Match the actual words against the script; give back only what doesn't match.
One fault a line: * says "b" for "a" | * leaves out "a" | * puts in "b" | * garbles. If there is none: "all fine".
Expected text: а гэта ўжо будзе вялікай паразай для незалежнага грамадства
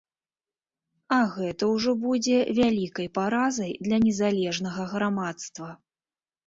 all fine